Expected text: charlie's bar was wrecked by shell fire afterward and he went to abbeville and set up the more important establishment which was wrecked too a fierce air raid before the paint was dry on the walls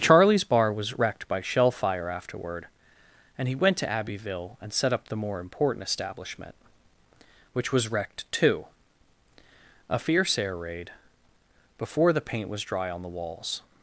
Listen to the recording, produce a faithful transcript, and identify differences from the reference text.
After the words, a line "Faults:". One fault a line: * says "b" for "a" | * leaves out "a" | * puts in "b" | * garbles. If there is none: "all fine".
charlie's bar was wrecked by shell fire afterward and he went to abbeville and set up the more important establishment which was wrecked too a fierce air raid before the paint was dry on the walls
Faults:
all fine